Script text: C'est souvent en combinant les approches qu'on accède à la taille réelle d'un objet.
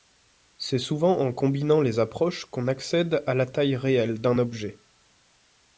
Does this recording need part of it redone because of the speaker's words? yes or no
no